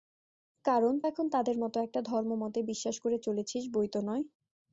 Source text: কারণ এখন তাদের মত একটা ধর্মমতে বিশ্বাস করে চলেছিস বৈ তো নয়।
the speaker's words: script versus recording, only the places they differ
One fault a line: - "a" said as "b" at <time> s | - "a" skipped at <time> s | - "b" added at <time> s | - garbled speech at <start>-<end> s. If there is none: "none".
none